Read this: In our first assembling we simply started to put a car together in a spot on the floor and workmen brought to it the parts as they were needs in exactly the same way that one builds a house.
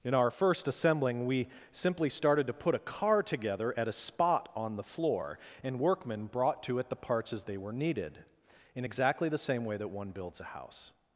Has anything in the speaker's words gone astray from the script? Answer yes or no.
yes